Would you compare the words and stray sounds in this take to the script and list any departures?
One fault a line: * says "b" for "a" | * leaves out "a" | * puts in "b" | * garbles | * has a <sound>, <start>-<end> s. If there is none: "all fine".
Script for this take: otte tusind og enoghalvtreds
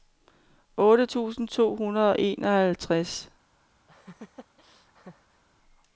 * puts in "to hundrede"
* has a laugh, 3.9-5.4 s